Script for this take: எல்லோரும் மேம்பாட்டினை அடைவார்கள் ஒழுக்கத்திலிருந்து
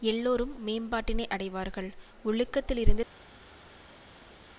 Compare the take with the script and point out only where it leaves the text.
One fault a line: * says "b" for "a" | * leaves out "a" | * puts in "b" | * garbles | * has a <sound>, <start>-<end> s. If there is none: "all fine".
all fine